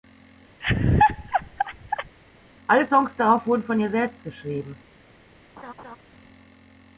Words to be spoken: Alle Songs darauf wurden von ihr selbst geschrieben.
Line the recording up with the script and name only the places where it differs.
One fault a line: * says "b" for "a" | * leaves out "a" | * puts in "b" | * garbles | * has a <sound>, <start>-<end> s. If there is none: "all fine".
* has a laugh, 0.6-2.2 s
* has a laugh, 5.6-6.0 s